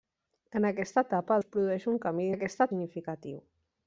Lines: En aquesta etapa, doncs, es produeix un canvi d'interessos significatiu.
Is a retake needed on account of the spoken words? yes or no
yes